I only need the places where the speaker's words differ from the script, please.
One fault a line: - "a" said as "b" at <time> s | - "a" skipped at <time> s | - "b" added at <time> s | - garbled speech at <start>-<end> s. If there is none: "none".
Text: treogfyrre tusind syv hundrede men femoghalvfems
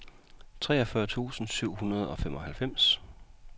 - "men" said as "og" at 2.1 s